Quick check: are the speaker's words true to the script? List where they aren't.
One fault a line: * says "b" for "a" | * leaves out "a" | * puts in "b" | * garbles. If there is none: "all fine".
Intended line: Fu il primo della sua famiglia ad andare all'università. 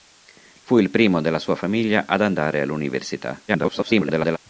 * garbles